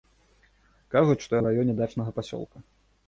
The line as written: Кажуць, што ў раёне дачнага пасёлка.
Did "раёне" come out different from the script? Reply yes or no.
no